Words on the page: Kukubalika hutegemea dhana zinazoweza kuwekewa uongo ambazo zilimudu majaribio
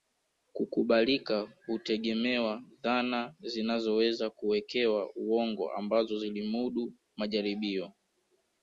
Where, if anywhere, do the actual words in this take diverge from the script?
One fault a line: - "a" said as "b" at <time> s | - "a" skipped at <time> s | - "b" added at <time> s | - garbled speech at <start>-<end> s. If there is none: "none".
none